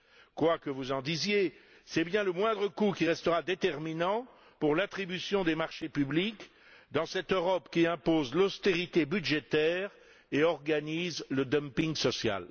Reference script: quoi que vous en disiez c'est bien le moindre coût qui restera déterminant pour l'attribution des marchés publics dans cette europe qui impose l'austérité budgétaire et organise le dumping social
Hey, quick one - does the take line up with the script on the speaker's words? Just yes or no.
yes